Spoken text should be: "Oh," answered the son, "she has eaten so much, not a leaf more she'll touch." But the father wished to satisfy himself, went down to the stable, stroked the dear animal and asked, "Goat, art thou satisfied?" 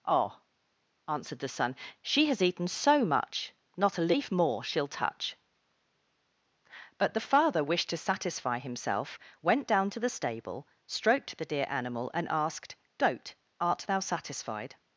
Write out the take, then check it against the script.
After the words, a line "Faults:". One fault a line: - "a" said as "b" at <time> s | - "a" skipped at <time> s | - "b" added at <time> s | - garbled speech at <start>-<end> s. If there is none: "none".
"Oh," answered the son, "she has eaten so much, not a leaf more she'll touch." But the father wished to satisfy himself, went down to the stable, stroked the dear animal and asked, "Goat, art thou satisfied?"
Faults:
none